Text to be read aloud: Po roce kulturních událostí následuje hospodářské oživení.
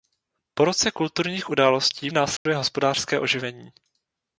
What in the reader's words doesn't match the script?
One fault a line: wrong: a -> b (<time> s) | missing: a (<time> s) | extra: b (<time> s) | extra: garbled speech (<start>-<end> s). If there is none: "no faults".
no faults